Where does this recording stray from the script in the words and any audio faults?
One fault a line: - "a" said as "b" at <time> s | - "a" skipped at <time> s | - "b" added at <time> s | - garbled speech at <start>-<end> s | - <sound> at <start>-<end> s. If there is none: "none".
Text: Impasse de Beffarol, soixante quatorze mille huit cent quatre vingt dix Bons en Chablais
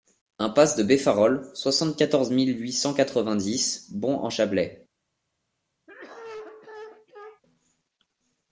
- cough at 5.9-7.4 s